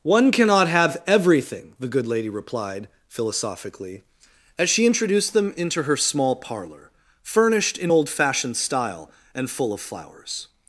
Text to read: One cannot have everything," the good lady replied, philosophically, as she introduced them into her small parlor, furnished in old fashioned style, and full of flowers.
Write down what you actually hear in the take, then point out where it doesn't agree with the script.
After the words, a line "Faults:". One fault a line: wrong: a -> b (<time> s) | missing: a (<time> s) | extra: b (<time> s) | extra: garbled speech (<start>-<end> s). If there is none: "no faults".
One cannot have everything," the good lady replied, philosophically, as she introduced them into her small parlor, furnished in old fashioned style, and full of flowers.
Faults:
no faults